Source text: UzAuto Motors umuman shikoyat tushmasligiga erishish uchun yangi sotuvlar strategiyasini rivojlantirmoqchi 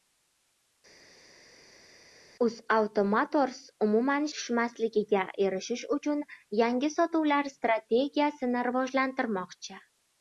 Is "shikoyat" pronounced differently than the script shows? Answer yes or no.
yes